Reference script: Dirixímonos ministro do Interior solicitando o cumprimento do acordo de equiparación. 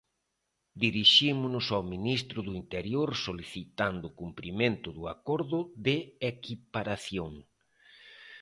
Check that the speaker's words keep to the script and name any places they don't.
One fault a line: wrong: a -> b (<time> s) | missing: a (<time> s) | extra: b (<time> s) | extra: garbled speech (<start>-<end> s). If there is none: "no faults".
extra: ao (1.7 s)